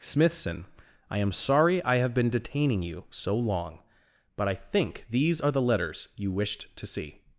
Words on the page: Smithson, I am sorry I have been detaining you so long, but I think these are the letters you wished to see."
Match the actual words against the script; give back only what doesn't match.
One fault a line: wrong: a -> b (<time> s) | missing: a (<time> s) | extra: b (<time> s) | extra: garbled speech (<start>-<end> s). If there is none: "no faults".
no faults